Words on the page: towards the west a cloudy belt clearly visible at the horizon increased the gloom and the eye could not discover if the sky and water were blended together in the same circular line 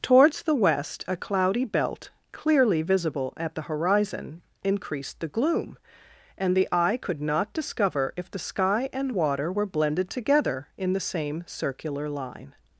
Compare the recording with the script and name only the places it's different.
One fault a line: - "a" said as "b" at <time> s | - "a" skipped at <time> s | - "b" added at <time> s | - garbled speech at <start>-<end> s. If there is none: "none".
none